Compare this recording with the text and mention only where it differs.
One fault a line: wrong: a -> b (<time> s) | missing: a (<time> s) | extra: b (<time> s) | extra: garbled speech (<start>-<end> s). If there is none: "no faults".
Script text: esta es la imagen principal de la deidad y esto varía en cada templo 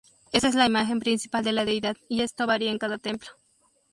no faults